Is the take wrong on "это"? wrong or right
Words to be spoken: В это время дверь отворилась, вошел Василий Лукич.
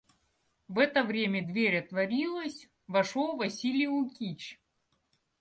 right